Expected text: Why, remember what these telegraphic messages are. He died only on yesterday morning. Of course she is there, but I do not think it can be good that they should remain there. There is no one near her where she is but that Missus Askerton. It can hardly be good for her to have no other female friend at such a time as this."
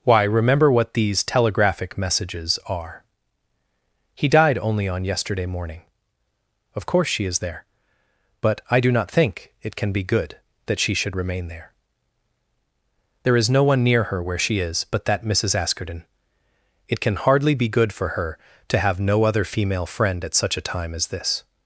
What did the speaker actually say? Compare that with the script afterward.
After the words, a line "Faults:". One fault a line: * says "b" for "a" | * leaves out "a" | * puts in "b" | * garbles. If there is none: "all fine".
Why, remember what these telegraphic messages are. He died only on yesterday morning. Of course she is there, but I do not think it can be good that she should remain there. There is no one near her where she is but that Missus Askerton. It can hardly be good for her to have no other female friend at such a time as this."
Faults:
* says "she" for "they"